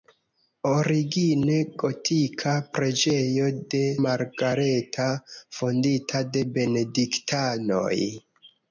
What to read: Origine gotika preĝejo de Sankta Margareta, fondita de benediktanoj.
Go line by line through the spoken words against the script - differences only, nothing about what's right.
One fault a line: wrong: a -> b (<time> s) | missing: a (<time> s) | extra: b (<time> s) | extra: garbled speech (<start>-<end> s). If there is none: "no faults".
missing: Sankta (3.8 s)